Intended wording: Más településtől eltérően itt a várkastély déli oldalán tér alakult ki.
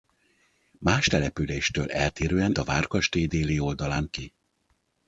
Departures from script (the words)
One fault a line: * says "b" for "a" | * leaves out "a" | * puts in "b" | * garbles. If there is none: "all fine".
* leaves out "itt"
* leaves out "tér alakult"